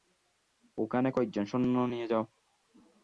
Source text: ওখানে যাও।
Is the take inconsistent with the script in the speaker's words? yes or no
yes